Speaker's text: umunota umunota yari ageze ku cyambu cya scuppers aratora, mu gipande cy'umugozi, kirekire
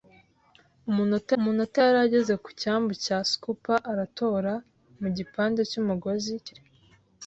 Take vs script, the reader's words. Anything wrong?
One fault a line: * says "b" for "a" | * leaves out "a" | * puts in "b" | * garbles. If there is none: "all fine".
all fine